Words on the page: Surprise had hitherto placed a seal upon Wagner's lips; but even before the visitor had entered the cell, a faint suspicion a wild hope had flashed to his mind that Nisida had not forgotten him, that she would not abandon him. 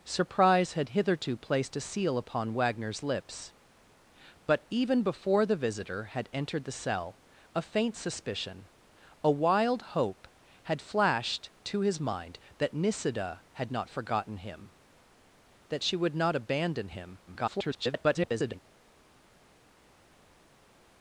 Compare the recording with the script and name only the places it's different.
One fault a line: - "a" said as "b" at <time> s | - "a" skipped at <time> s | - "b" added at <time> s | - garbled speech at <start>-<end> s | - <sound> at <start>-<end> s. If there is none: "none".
- garbled speech at 17.3-18.6 s